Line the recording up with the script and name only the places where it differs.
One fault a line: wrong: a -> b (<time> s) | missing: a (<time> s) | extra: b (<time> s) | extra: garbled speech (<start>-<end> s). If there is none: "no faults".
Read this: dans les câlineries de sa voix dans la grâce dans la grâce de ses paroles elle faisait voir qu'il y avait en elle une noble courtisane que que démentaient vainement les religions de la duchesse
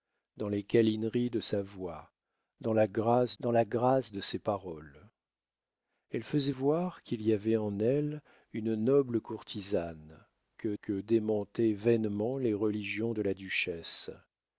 no faults